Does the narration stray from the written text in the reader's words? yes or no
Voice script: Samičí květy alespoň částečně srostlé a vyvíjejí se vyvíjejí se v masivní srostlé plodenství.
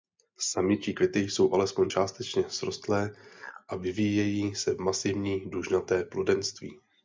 yes